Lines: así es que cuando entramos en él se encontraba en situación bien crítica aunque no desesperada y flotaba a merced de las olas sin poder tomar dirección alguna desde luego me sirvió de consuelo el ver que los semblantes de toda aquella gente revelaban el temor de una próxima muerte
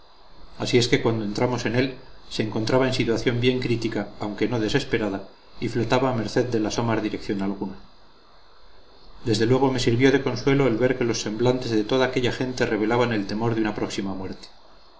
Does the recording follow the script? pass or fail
fail